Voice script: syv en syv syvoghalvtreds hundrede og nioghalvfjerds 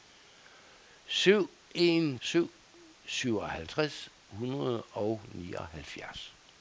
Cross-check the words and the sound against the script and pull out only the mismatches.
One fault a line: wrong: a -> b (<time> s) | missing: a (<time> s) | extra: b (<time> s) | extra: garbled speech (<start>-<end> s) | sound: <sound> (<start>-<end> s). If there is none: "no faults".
no faults